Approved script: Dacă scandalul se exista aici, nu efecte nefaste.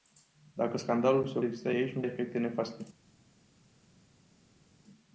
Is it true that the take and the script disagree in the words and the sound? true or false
false